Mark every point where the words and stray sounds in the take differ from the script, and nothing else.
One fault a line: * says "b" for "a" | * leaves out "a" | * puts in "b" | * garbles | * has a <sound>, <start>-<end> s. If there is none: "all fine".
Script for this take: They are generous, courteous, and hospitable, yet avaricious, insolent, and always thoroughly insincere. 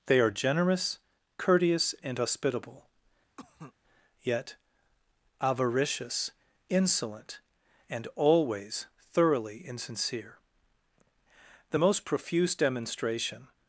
* has a cough, 3.4-3.7 s
* puts in "The most profuse demonstration"